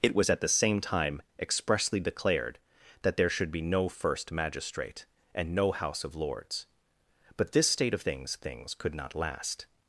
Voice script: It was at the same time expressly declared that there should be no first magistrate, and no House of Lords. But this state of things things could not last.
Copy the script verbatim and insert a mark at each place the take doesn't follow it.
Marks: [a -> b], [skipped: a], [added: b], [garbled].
It was at the same time expressly declared that there should be no first magistrate, and no House of Lords. But this state of things things could not last.